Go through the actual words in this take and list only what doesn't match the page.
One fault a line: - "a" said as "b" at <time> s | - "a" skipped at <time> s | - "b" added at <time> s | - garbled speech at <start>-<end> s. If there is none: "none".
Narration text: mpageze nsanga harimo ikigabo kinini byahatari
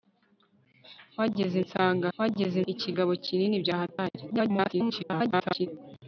- "harimo" said as "mpageze" at 2.1 s
- garbled speech at 4.3-5.7 s